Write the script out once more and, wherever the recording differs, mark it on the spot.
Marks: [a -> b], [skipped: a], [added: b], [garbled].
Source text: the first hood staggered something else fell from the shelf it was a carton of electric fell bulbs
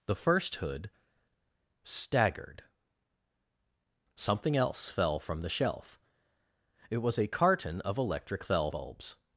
the first hood staggered something else fell from the shelf it was a carton of electric fell bulbs